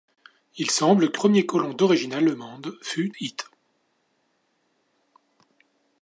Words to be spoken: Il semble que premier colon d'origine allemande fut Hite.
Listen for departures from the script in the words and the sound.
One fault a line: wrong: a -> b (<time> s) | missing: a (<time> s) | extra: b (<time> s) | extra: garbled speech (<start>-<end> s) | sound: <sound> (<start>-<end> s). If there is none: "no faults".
no faults